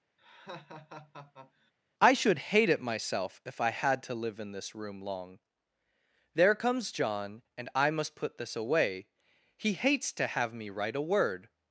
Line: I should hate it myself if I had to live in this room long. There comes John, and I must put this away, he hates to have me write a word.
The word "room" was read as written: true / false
true